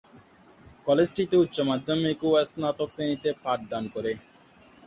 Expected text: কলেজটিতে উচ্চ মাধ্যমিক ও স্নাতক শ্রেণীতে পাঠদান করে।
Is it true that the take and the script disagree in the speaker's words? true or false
false